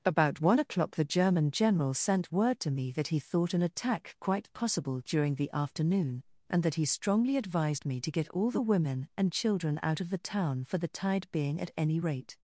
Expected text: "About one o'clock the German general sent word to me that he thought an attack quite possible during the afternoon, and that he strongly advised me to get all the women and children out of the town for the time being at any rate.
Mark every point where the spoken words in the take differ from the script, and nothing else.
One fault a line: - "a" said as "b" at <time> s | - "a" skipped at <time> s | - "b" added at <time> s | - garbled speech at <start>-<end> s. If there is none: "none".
- "time" said as "tide" at 10.9 s